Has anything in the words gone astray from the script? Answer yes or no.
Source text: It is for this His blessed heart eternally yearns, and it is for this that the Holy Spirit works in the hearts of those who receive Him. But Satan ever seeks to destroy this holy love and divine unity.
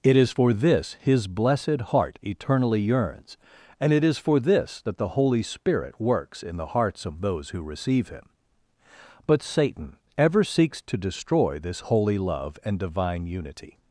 no